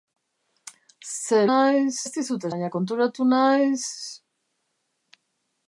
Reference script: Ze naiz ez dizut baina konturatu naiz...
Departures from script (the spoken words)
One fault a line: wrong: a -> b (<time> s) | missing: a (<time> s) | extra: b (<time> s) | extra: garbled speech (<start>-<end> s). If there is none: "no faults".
no faults